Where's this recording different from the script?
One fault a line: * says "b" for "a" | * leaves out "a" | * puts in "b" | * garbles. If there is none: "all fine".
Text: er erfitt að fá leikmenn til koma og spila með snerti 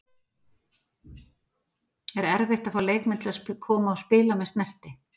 * puts in "að"